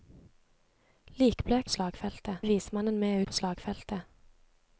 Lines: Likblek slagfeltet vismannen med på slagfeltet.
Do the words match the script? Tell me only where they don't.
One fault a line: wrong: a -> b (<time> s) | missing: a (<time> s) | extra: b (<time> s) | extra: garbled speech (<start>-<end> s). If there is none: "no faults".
no faults